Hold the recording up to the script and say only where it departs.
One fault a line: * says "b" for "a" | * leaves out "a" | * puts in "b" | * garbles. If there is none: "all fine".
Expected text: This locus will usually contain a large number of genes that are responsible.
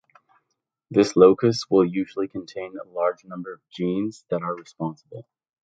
all fine